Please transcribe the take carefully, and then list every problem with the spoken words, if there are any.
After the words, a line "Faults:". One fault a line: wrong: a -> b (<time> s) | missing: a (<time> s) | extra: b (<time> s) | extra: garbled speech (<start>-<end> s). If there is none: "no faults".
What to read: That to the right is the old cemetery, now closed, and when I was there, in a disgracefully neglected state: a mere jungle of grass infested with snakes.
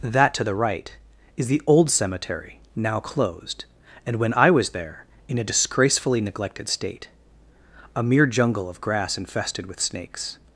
That to the right is the old cemetery, now closed, and when I was there, in a disgracefully neglected state: a mere jungle of grass infested with snakes.
Faults:
no faults